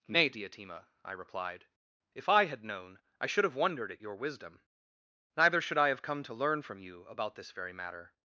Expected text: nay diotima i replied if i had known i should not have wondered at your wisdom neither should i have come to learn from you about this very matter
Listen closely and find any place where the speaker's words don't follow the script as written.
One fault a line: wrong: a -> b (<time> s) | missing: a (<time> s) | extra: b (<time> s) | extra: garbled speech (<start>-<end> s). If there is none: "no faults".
missing: not (3.4 s)